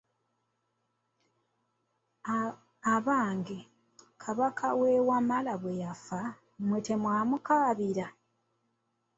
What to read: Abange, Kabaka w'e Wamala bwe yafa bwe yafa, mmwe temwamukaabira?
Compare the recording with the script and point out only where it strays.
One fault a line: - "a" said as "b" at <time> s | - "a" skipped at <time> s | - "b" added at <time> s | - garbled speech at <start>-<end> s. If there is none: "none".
- "bwe yafa" skipped at 6.2 s